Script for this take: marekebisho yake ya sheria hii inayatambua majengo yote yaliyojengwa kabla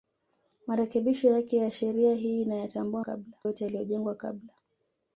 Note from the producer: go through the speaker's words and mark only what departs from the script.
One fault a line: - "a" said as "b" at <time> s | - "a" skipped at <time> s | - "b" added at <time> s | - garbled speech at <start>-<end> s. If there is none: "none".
- "majengo" said as "kabla" at 3.0 s